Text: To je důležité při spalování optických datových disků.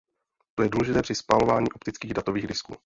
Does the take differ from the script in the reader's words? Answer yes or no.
no